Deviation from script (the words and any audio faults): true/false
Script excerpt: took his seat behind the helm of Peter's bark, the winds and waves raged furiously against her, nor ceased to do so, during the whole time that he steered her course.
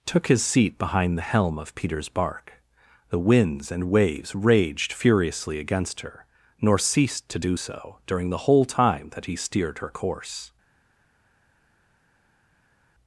false